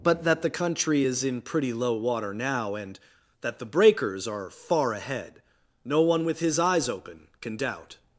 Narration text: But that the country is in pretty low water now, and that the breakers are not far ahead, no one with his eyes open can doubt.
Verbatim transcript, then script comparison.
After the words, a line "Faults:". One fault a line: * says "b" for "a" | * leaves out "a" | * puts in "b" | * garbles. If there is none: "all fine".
But that the country is in pretty low water now, and that the breakers are far ahead, no one with his eyes open can doubt.
Faults:
* leaves out "not"